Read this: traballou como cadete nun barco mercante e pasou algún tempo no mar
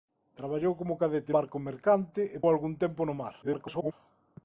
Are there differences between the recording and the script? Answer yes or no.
yes